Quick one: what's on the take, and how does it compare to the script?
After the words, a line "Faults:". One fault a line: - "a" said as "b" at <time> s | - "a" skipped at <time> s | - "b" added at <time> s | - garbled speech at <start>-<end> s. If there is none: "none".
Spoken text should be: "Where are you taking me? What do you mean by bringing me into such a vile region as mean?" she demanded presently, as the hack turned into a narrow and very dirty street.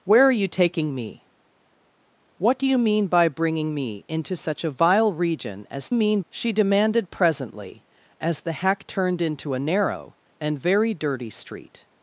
"Where are you taking me? What do you mean by bringing me into such a vile region as mean?" she demanded presently, as the hack turned into a narrow and very dirty street.
Faults:
none